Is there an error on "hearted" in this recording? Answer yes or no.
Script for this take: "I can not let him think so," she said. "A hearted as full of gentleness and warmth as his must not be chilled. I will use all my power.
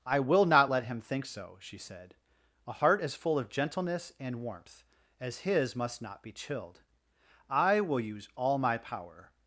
yes